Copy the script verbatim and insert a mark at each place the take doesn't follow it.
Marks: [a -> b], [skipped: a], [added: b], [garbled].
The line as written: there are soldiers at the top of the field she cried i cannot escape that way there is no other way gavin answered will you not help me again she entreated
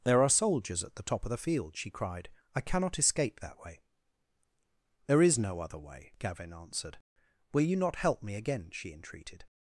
there are soldiers at the top of the field she cried i cannot escape that way there is no other way gavin answered will you not help me again she entreated